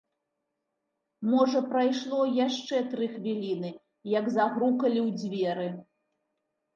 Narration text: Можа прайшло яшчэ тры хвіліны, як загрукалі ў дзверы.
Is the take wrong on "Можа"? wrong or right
right